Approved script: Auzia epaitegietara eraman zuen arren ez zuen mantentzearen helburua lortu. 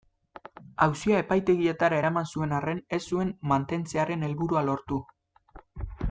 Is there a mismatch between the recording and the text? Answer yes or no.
no